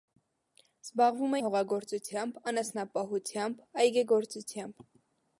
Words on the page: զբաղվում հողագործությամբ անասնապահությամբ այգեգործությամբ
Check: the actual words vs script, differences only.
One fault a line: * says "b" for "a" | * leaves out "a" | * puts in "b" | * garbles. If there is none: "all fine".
all fine